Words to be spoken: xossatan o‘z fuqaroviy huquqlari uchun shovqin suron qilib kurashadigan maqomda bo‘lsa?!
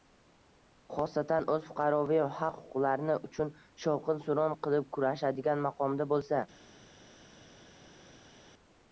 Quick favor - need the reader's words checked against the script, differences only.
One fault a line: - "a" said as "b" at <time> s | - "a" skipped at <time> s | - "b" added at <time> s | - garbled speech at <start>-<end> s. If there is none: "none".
- "haq" added at 2.4 s